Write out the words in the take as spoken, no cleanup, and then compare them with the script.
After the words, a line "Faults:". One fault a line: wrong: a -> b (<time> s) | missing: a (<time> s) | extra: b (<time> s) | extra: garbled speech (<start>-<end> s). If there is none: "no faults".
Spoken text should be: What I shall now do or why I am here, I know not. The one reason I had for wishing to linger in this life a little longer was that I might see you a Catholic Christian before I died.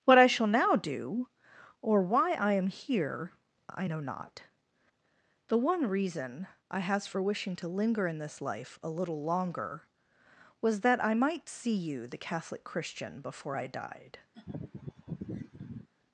What I shall now do or why I am here, I know not. The one reason I has for wishing to linger in this life a little longer was that I might see you the Catholic Christian before I died.
Faults:
wrong: had -> has (6.8 s)
wrong: a -> the (12.1 s)